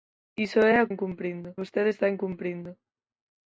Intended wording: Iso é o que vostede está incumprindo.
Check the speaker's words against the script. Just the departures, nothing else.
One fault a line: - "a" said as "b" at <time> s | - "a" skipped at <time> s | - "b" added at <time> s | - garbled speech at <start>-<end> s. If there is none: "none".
- "que" said as "incumprindo" at 0.9 s